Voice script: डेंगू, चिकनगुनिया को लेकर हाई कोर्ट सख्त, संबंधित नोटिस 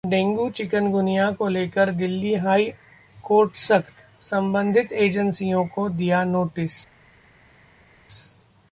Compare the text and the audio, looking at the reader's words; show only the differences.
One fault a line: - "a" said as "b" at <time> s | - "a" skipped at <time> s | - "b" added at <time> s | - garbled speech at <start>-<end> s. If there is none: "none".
- "दिल्ली" added at 1.9 s
- "एजेंसियों को दिया" added at 4.9 s